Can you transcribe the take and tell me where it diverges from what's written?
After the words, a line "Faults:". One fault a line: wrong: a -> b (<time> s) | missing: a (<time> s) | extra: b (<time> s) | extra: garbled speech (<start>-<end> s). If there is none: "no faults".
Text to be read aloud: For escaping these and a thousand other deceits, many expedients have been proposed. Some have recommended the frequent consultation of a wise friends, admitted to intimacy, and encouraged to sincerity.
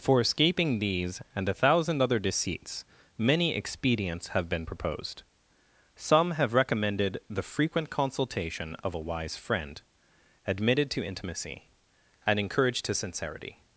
For escaping these and a thousand other deceits, many expedients have been proposed. Some have recommended the frequent consultation of a wise friend, admitted to intimacy, and encouraged to sincerity.
Faults:
wrong: friends -> friend (9.4 s)